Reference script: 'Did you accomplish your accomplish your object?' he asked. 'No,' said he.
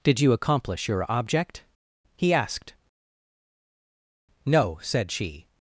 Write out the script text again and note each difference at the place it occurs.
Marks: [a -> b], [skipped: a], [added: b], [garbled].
'Did you accomplish your [skipped: accomplish your] object?' he asked. 'No,' said [he. -> she]